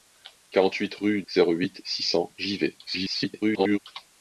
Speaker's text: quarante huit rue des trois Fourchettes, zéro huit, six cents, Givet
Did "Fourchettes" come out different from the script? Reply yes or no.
yes